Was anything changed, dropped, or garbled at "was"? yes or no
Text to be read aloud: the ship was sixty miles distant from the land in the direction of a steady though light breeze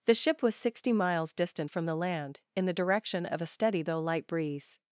no